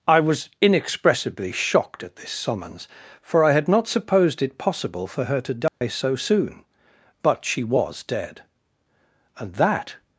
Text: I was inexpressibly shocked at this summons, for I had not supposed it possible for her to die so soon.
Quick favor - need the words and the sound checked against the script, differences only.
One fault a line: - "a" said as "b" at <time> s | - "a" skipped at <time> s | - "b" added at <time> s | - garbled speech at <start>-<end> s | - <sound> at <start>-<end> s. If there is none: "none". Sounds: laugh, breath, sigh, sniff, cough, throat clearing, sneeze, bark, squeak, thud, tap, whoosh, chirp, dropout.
- dropout at 5.7-5.8 s
- "But she was dead and that" added at 7.2 s